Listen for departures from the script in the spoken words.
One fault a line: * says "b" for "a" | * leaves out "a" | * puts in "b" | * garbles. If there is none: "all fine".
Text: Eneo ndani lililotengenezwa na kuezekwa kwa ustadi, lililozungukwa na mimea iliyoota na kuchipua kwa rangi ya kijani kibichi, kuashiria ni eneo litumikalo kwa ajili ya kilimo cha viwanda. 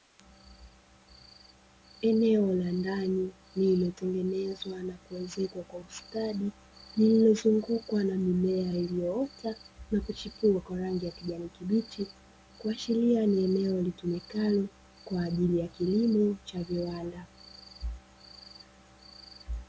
* puts in "la"